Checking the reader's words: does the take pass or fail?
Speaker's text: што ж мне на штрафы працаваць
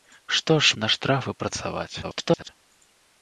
fail